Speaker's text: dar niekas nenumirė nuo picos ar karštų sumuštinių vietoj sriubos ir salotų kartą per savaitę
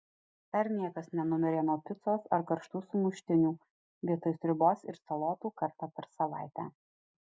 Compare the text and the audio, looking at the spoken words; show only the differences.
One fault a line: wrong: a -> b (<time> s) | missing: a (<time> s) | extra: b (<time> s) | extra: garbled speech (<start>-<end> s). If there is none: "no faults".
no faults